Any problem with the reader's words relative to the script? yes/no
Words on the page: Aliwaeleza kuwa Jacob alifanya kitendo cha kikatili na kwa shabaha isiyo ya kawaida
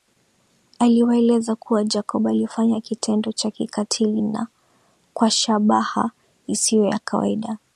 no